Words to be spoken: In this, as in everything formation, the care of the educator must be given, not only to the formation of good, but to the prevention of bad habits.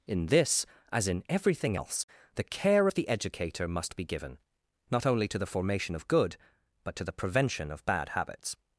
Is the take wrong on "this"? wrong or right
right